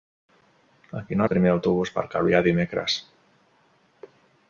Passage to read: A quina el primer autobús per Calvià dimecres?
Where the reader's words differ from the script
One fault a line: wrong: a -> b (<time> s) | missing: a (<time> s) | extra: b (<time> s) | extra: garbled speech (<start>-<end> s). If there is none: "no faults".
no faults